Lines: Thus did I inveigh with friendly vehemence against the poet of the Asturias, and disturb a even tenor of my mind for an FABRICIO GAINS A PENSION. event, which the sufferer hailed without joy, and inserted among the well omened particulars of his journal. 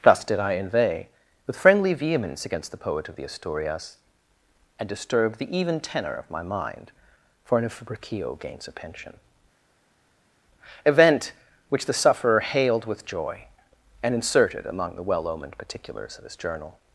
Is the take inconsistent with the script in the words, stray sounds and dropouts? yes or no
yes